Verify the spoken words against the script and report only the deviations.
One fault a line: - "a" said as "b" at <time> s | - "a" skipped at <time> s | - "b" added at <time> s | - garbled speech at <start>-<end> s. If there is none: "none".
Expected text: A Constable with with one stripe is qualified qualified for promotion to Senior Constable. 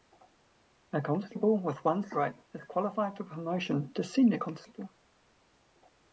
- "with" skipped at 1.9 s
- "qualified" skipped at 3.1 s